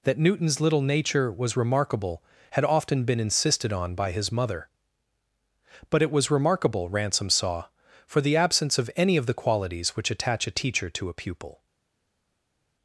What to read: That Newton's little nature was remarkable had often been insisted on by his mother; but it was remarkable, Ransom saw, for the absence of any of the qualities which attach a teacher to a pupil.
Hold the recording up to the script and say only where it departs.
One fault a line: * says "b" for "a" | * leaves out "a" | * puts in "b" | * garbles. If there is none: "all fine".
all fine